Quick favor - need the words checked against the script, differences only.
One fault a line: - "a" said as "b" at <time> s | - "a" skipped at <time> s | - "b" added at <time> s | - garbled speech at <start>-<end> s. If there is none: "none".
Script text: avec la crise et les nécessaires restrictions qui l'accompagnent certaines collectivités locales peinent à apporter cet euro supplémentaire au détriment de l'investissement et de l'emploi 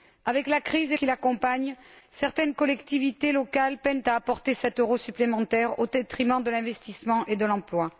- "les nécessaires restrictions" skipped at 1.0 s